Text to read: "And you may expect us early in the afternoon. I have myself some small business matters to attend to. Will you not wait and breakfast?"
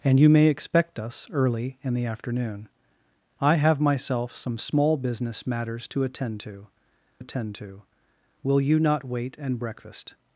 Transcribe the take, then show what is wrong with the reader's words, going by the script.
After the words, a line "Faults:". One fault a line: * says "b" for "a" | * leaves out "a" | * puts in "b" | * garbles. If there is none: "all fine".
"And you may expect us early in the afternoon. I have myself some small business matters to attend to attend to. Will you not wait and breakfast?"
Faults:
* puts in "attend to"